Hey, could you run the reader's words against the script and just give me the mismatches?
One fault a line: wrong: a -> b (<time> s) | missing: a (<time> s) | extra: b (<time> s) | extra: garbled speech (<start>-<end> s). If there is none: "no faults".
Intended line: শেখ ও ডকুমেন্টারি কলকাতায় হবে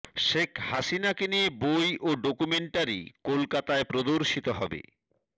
extra: হাসিনাকে নিয়ে বই (0.7 s)
extra: প্রদর্শিত (3.9 s)